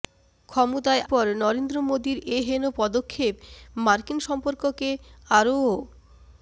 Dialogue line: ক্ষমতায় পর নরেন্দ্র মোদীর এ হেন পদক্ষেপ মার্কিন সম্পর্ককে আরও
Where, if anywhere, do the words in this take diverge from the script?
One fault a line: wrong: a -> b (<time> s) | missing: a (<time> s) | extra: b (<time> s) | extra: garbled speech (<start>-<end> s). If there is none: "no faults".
no faults